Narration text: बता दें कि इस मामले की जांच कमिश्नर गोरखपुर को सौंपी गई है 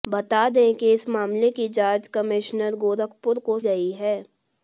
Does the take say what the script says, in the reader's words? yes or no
no